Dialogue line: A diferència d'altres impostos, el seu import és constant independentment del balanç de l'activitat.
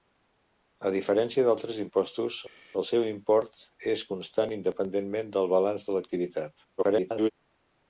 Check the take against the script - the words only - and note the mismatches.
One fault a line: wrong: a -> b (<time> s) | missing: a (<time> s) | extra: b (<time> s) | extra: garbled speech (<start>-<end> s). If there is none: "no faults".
extra: garbled speech (6.8-7.3 s)